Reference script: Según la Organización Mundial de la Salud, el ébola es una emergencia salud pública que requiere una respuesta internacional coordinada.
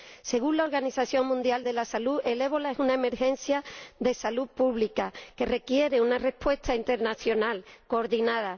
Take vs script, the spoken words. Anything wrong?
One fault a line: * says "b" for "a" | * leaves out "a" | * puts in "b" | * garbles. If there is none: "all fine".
* puts in "de"